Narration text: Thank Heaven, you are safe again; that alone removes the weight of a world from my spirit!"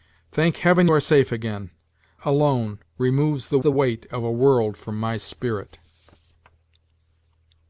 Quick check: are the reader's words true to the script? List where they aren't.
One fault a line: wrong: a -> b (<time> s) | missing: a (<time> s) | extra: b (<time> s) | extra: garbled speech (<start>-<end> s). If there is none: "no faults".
missing: you (0.9 s)
missing: that (1.7 s)
extra: the (3.6 s)